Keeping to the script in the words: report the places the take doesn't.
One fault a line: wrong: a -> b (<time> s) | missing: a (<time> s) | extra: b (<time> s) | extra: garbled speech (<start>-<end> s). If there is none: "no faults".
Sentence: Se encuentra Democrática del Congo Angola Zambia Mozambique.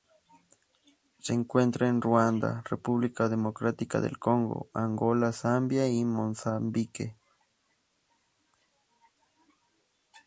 extra: en Ruanda República (1.9 s)
extra: y (5.9 s)